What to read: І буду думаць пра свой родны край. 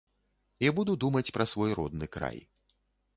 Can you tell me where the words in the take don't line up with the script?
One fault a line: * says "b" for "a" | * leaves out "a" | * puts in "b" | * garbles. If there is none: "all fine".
all fine